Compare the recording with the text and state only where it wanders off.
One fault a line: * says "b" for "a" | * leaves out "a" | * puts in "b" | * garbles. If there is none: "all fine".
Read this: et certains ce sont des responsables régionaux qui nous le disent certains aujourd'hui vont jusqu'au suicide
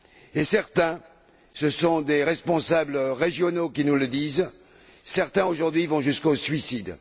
all fine